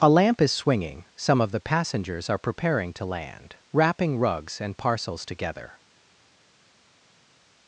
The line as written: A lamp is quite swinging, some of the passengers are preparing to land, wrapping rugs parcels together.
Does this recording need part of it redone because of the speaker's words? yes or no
yes